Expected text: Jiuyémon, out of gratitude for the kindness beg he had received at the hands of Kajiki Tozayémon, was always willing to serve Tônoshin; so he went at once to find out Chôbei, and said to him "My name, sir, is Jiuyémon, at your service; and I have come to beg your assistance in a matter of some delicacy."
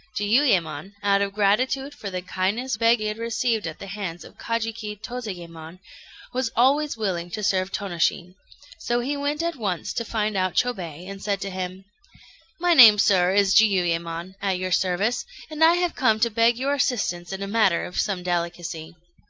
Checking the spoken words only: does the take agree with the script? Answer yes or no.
yes